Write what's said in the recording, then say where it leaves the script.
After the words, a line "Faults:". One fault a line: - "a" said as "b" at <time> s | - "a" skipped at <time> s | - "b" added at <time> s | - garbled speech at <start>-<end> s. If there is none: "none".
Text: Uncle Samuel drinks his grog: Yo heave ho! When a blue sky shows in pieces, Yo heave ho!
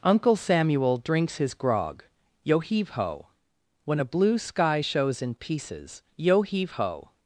Uncle Samuel drinks his grog: Yo heave ho! When a blue sky shows in pieces, Yo heave ho!
Faults:
none